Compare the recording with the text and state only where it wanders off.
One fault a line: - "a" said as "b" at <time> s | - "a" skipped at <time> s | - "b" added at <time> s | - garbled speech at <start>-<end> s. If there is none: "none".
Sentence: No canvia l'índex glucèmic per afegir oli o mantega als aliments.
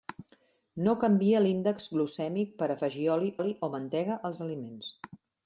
- "oli" added at 3.4 s